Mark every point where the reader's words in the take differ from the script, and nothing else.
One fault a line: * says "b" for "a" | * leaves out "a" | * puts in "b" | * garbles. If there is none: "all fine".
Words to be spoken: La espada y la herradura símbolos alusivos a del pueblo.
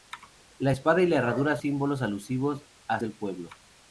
all fine